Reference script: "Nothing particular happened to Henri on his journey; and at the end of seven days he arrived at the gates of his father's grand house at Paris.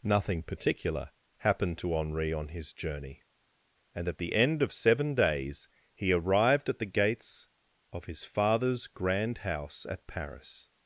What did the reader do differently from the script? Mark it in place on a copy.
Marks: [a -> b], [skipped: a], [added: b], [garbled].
"Nothing particular happened to Henri on his journey; and at the end of seven days he arrived at the gates of his father's grand house at Paris.